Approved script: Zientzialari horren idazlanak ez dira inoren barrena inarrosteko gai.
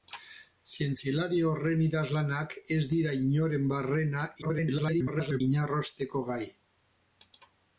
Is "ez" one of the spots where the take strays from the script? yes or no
no